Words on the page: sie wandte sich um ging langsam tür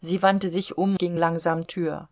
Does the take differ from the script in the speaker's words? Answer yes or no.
no